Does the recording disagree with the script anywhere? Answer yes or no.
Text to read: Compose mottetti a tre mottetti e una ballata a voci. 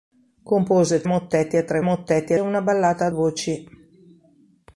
no